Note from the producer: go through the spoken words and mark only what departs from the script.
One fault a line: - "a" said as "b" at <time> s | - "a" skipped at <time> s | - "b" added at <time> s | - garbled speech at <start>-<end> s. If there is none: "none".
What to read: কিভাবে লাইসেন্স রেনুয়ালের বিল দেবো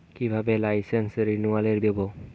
- "বিল" skipped at 1.8 s